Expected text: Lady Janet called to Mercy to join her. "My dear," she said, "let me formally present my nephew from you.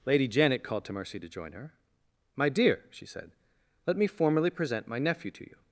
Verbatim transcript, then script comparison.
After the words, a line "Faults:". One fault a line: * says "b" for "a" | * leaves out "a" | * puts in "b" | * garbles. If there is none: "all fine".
Lady Janet called to Mercy to join her. "My dear," she said, "let me formally present my nephew to you.
Faults:
* says "to" for "from"